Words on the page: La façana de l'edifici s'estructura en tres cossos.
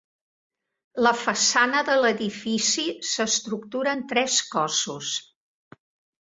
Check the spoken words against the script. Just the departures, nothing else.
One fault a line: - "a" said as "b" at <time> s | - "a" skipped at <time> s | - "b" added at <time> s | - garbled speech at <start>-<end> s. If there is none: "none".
none